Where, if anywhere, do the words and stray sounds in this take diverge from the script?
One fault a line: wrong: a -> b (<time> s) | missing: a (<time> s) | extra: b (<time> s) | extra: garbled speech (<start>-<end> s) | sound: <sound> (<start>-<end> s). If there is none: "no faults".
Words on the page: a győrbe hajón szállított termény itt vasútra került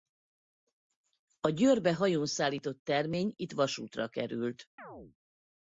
sound: chirp (4.8-5.2 s)